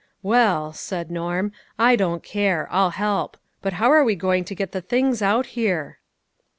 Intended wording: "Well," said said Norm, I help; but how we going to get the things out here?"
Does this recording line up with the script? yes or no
no